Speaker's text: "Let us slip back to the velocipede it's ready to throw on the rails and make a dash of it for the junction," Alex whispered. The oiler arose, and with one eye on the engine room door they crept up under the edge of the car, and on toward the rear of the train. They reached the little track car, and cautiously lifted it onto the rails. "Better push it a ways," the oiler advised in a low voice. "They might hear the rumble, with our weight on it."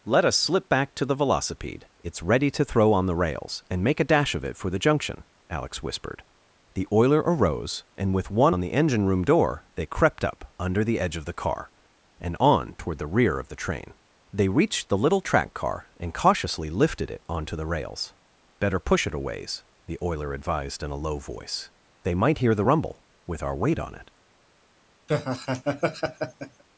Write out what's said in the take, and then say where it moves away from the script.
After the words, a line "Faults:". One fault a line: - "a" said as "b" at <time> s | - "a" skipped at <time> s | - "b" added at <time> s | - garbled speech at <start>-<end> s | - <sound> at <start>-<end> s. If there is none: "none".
"Let us slip back to the velocipede it's ready to throw on the rails and make a dash of it for the junction," Alex whispered. The oiler arose, and with one on the engine room door they crept up under the edge of the car, and on toward the rear of the train. They reached the little track car, and cautiously lifted it onto the rails. "Better push it a ways," the oiler advised in a low voice. "They might hear the rumble, with our weight on it."
Faults:
- "eye" skipped at 8.6 s
- laugh at 25.1-26.6 s